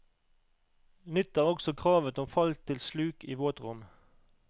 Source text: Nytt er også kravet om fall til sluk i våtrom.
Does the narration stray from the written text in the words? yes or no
no